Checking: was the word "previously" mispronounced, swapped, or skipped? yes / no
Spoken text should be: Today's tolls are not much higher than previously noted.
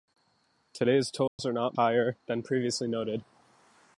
no